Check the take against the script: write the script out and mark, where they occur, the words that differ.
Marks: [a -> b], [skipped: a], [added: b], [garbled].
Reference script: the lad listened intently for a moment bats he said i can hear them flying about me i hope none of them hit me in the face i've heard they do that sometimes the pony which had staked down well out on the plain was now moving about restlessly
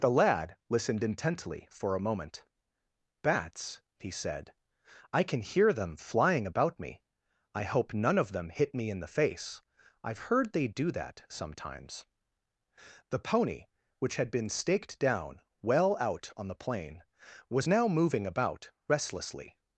the lad listened intently for a moment bats he said i can hear them flying about me i hope none of them hit me in the face i've heard they do that sometimes the pony which had [added: been] staked down well out on the plain was now moving about restlessly